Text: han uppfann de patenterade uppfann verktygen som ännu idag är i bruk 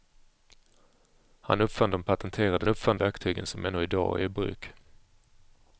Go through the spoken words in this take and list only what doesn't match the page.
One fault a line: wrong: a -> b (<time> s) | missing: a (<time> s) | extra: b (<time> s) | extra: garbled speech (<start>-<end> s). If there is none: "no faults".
no faults